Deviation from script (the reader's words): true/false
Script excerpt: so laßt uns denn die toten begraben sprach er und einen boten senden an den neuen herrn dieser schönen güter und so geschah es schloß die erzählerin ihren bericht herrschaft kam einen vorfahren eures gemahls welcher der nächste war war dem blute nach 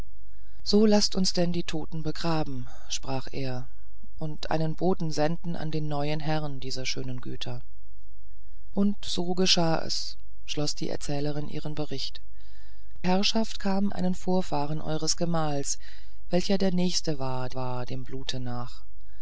false